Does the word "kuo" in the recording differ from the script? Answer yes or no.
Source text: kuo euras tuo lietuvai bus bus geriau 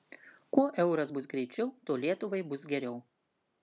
no